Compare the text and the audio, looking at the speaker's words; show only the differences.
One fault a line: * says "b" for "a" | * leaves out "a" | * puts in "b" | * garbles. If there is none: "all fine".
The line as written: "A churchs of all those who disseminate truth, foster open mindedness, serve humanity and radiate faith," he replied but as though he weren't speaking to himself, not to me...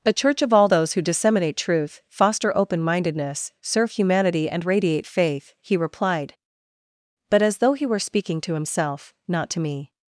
* says "church" for "churchs"
* says "were" for "weren't"